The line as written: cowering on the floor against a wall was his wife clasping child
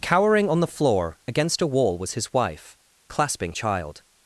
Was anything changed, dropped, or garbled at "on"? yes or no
no